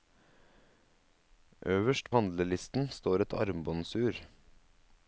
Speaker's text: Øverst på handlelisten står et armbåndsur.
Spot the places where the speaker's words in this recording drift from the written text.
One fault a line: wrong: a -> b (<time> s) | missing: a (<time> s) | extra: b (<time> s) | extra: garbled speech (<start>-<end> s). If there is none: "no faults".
missing: på (2.1 s)